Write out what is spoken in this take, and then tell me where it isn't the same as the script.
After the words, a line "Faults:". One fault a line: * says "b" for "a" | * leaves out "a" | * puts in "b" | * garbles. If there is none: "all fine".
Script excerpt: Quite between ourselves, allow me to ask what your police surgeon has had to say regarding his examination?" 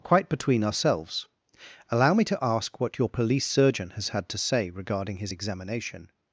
Quite between ourselves, allow me to ask what your police surgeon has had to say regarding his examination?"
Faults:
all fine